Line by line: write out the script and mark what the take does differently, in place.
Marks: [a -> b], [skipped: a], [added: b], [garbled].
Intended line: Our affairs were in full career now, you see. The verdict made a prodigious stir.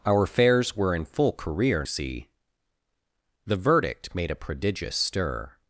Our affairs were in full career [skipped: now, you] see. The verdict made a prodigious stir.